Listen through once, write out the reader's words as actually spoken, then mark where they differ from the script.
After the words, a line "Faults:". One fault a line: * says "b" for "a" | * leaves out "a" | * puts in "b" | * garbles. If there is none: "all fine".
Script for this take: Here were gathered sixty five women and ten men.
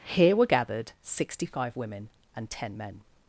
Here were gathered sixty five women and ten men.
Faults:
all fine